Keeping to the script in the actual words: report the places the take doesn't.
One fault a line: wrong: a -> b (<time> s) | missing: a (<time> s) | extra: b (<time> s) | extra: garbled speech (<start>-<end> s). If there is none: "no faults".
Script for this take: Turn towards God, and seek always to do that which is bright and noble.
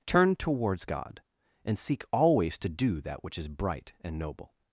no faults